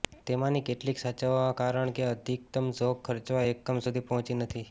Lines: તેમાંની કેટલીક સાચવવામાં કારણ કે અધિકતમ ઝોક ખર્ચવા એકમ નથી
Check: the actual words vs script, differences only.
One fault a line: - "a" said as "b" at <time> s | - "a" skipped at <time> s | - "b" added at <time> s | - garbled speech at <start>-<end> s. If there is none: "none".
- "સુધી પહોંચી" added at 3.8 s